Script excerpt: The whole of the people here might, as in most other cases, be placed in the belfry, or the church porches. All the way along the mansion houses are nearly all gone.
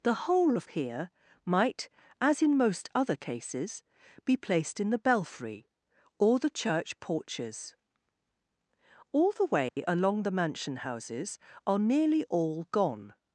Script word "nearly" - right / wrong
right